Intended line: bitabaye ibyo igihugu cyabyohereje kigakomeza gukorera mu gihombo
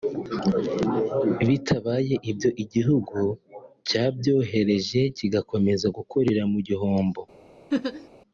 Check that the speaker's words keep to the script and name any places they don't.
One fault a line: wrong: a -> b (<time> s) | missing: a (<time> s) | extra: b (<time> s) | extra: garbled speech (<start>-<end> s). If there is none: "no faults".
no faults